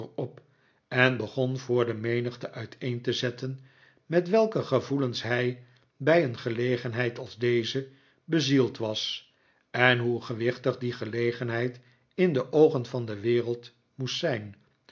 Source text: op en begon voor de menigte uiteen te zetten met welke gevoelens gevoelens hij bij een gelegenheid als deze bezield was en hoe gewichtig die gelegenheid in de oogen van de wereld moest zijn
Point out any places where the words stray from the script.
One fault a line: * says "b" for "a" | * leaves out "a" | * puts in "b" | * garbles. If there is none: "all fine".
* leaves out "gevoelens"